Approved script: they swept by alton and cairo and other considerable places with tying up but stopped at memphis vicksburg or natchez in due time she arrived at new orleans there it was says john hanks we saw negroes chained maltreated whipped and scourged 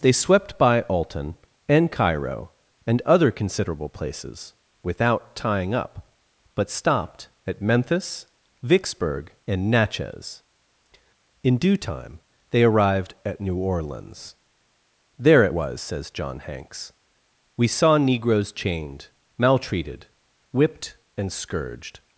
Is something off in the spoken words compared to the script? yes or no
yes